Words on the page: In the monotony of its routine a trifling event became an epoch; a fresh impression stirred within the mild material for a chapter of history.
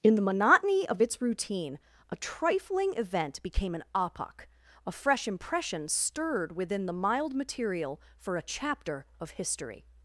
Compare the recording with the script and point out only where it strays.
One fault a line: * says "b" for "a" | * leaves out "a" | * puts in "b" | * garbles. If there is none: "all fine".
all fine